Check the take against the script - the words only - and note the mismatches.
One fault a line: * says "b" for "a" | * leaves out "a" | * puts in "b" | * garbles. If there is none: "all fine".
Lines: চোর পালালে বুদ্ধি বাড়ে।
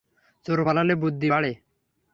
all fine